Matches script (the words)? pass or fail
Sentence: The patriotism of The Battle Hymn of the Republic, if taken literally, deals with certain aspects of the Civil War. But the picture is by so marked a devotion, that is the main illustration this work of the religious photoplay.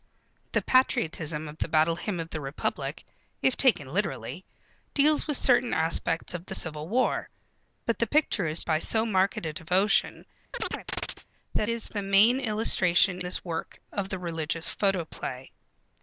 pass